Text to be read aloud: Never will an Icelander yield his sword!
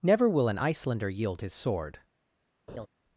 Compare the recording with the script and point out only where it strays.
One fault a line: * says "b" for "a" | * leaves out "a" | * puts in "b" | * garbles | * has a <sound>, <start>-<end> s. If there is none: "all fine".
* has a laugh, 2.7-2.9 s